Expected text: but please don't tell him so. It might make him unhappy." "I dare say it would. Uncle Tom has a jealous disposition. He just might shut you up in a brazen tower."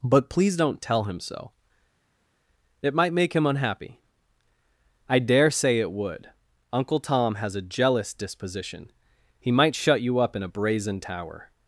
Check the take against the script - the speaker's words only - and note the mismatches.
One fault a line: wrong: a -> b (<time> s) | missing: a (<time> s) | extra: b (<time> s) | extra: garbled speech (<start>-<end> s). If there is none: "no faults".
missing: just (9.5 s)